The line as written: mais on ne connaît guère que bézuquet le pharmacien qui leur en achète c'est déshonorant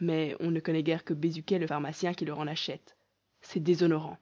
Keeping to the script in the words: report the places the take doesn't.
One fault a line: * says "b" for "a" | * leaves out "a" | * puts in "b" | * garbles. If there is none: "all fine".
all fine